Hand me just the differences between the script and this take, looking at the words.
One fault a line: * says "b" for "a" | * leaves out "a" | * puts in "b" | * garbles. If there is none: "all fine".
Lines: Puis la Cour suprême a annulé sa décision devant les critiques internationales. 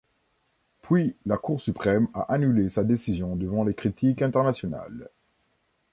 all fine